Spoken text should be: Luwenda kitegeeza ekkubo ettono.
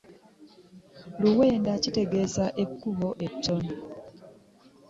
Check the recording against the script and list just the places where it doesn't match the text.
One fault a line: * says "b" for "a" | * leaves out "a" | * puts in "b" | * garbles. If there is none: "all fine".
all fine